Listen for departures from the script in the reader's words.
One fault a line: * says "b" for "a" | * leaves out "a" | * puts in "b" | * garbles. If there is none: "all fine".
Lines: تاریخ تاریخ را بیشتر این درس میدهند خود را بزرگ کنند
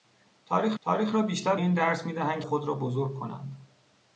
all fine